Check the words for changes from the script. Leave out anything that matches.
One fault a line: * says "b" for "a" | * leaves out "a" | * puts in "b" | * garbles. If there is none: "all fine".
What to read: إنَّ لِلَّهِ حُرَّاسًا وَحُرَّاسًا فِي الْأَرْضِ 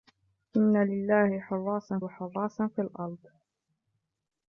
all fine